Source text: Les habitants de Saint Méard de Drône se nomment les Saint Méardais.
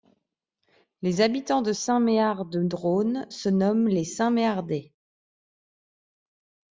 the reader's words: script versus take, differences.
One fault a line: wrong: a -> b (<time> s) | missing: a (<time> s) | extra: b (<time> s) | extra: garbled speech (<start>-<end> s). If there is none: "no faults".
no faults